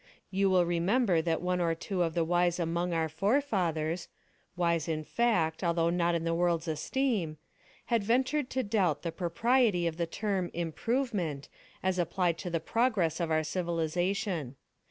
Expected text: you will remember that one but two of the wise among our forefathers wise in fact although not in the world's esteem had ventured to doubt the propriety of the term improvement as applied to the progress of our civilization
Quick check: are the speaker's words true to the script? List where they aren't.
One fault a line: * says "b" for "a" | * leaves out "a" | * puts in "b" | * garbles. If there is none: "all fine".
* says "or" for "but"